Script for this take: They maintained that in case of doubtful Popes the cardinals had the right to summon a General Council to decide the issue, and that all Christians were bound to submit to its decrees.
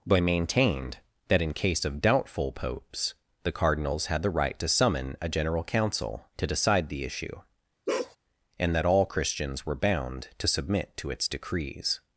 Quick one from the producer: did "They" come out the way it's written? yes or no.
no